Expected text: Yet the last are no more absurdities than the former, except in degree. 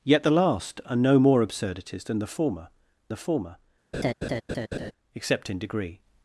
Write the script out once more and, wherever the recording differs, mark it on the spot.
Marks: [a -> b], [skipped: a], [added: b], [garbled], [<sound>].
Yet the last are no more absurdities than the former, [added: the former] [laugh] except in degree.